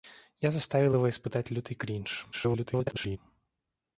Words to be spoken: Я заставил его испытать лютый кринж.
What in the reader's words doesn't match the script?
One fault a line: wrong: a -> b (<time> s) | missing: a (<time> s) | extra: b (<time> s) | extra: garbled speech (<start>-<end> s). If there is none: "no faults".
extra: garbled speech (2.3-3.2 s)